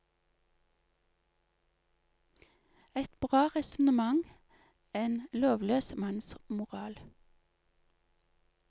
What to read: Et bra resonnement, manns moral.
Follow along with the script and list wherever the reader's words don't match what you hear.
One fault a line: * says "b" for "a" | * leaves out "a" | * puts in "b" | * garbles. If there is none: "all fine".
* puts in "en lovløs"